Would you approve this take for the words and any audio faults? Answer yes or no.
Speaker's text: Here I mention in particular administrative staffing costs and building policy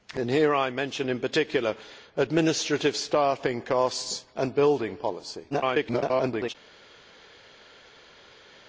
no